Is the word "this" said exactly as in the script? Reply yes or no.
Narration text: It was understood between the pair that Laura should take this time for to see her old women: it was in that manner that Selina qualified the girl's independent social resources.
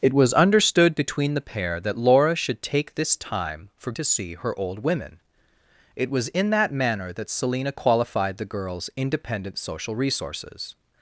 yes